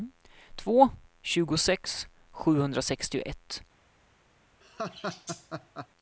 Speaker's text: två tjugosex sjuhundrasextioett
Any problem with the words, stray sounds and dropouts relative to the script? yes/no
yes